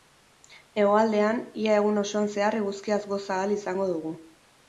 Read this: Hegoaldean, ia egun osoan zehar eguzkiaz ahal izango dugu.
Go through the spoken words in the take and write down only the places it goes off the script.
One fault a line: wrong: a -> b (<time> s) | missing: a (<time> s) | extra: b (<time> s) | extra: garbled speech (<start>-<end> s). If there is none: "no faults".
extra: goza (3.1 s)